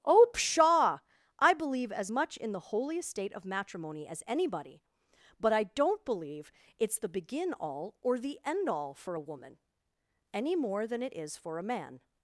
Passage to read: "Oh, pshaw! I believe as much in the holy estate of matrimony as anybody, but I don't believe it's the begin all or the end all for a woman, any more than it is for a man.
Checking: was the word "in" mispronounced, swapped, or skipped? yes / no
no